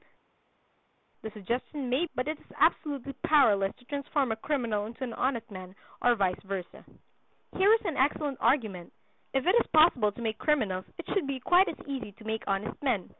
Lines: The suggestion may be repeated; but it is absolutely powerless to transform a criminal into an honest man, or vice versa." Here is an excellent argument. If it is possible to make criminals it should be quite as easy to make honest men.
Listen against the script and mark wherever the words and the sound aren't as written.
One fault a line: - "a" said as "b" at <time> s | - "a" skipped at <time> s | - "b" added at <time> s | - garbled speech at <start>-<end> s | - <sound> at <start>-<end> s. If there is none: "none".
- "be repeated" skipped at 2.1 s